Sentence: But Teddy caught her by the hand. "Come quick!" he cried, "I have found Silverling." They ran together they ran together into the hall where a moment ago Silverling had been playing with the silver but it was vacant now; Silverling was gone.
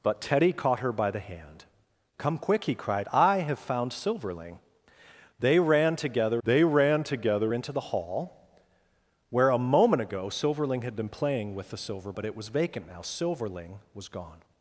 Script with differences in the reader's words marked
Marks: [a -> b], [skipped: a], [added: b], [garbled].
But Teddy caught her by the hand. "Come quick!" he cried, "I have found Silverling." They ran together they ran together into the hall where a moment ago Silverling had been playing with the silver but it was vacant now; Silverling was gone.